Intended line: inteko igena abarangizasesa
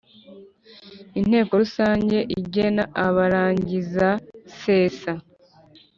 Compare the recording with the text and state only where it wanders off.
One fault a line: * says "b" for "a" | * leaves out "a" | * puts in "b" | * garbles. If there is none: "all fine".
* puts in "rusange"